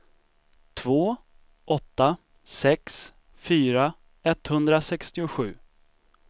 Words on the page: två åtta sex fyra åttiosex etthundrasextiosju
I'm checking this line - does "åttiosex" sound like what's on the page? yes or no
no